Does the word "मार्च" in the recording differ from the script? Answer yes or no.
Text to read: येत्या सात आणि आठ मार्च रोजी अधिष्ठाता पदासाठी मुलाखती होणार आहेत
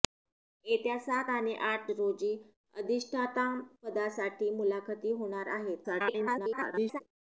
yes